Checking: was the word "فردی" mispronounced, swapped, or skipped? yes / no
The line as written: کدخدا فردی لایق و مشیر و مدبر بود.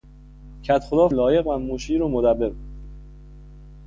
yes